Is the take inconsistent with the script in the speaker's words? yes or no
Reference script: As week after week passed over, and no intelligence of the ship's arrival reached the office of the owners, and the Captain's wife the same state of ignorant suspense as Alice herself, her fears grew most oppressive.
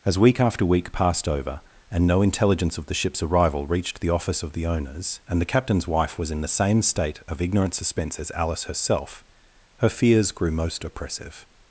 yes